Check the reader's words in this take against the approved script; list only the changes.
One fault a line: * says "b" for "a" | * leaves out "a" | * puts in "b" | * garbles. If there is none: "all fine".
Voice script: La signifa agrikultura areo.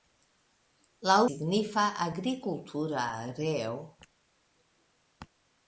all fine